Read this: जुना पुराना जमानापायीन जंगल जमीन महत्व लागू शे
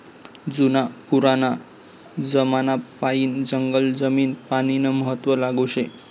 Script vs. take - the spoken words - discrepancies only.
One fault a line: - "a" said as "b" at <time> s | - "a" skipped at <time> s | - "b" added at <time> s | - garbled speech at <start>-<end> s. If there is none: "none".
- "पानीनं" added at 4.5 s